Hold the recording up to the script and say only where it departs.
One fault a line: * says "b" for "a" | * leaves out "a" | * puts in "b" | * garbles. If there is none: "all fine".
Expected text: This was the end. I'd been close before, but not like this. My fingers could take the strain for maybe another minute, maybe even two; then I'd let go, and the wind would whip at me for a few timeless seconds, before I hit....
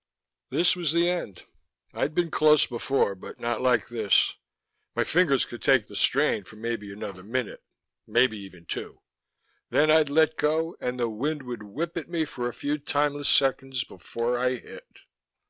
all fine